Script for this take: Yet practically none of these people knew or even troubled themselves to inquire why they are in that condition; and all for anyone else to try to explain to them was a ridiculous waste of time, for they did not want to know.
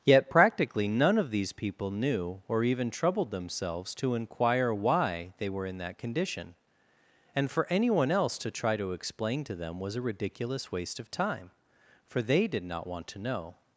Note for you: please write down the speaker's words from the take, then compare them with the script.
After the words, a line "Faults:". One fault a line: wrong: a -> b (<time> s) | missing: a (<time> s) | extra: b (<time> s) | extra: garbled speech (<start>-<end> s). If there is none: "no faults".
Yet practically none of these people knew or even troubled themselves to inquire why they were in that condition; and for anyone else to try to explain to them was a ridiculous waste of time, for they did not want to know.
Faults:
wrong: are -> were (5.5 s)
missing: all (7.5 s)